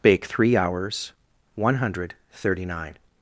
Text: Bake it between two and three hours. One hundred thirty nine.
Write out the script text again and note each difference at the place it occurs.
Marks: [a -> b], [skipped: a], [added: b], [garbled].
Bake [skipped: it between two and] three hours. One hundred thirty nine.